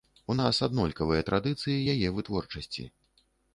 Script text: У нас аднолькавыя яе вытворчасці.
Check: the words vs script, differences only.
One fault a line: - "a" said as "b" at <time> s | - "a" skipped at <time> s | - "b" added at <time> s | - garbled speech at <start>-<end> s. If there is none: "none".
- "традыцыі" added at 1.3 s